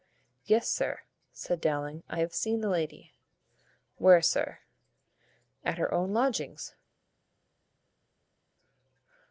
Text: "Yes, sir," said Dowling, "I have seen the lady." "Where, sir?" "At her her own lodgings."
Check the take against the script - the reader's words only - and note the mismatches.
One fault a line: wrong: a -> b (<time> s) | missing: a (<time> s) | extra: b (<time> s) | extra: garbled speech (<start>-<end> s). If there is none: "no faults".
missing: her (5.9 s)